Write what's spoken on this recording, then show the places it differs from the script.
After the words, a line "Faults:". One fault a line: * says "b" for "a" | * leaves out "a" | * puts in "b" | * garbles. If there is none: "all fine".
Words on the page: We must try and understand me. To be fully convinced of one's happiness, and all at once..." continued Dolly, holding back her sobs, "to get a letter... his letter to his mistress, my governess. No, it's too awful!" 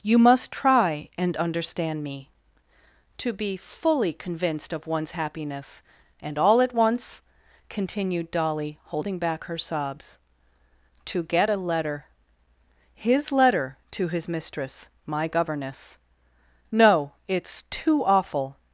You must try and understand me. To be fully convinced of one's happiness, and all at once..." continued Dolly, holding back her sobs, "to get a letter... his letter to his mistress, my governess. No, it's too awful!"
Faults:
* says "You" for "We"